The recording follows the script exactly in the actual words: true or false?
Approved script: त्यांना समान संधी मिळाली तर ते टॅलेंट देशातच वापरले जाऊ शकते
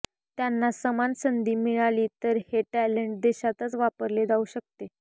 false